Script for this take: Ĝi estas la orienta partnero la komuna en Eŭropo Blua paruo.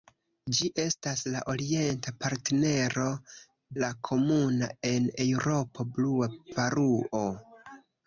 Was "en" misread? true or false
false